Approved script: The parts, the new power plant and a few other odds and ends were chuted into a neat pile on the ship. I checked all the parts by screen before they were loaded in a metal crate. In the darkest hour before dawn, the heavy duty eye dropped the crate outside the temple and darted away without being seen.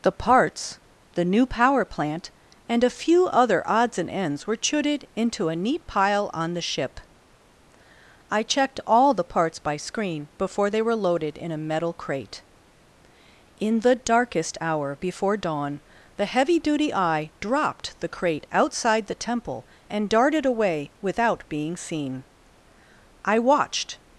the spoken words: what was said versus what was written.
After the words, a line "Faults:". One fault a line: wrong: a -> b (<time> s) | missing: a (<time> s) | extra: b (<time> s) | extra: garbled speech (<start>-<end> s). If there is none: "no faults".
The parts, the new power plant and a few other odds and ends were chuted into a neat pile on the ship. I checked all the parts by screen before they were loaded in a metal crate. In the darkest hour before dawn, the heavy duty eye dropped the crate outside the temple and darted away without being seen. I watched
Faults:
extra: I watched (23.3 s)